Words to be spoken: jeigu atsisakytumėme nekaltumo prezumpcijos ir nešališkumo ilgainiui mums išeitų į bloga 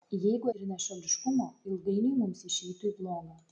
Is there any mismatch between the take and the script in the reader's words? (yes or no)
yes